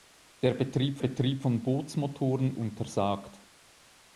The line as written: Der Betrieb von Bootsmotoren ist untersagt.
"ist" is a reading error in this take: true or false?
true